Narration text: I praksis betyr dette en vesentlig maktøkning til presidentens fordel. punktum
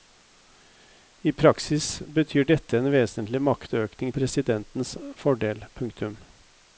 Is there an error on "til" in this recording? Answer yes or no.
yes